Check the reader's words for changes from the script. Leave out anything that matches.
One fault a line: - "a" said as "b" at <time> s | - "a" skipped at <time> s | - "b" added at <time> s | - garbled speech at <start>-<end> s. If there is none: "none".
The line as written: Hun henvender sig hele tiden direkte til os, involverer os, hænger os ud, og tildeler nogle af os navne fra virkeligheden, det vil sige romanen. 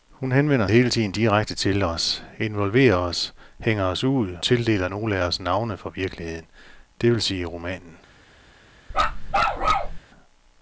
- "sig" skipped at 0.7 s
- "og" skipped at 4.4 s